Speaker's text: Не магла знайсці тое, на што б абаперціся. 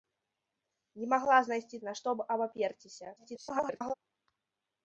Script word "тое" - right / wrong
wrong